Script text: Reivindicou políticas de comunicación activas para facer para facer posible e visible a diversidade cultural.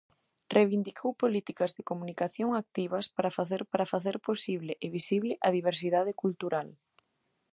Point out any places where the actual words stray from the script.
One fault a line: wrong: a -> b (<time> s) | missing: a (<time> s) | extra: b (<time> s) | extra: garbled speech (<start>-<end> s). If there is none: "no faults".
no faults